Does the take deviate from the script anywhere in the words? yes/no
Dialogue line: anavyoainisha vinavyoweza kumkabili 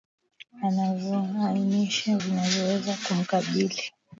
no